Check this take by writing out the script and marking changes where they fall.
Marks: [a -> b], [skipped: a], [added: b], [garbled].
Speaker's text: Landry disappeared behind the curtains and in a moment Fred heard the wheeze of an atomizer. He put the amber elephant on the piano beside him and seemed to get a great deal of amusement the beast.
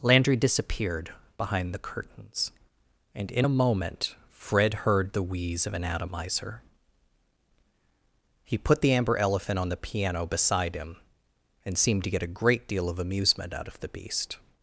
Landry disappeared behind the curtains and in a moment Fred heard the wheeze of an atomizer. He put the amber elephant on the piano beside him and seemed to get a great deal of amusement [added: out of] the beast.